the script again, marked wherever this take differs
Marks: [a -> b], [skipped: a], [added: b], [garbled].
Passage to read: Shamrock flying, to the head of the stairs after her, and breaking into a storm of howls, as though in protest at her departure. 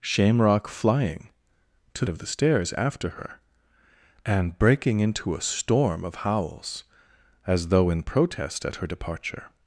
Shamrock flying, to [skipped: the head] of the stairs after her, and breaking into a storm of howls, as though in protest at her departure.